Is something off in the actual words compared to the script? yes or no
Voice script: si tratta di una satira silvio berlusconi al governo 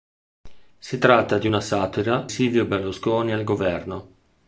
no